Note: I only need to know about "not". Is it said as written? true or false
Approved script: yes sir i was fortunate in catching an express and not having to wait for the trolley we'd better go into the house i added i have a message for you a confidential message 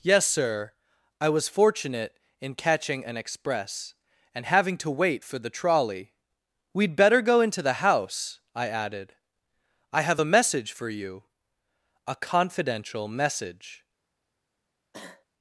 false